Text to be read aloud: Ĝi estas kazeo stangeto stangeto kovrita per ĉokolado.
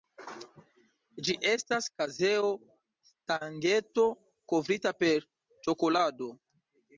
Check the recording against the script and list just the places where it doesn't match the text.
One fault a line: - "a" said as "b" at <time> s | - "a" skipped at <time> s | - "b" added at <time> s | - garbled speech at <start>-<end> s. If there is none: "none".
- "stangeto" skipped at 4.1 s